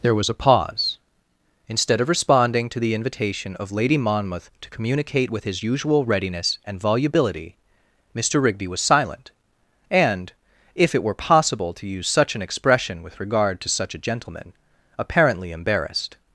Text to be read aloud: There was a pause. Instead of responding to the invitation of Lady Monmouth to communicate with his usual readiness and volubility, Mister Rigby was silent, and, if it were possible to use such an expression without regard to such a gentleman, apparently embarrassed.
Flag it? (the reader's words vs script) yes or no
yes